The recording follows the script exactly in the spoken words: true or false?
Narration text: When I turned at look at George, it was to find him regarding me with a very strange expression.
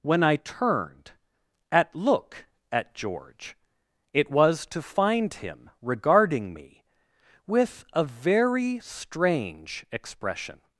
true